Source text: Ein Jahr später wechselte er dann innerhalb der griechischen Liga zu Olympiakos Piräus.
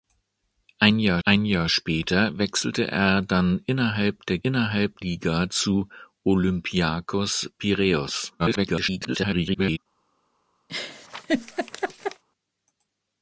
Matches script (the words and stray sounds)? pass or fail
fail